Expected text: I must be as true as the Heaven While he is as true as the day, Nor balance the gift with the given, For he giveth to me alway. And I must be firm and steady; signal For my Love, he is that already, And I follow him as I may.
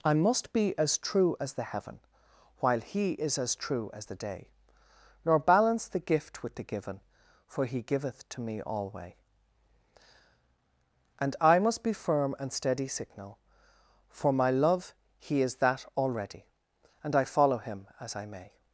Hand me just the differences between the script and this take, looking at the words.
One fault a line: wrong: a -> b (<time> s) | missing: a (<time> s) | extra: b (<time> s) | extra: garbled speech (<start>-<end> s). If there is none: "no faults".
no faults